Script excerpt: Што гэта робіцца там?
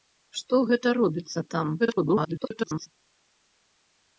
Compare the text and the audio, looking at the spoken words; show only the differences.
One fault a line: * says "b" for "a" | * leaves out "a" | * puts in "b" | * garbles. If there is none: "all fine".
* garbles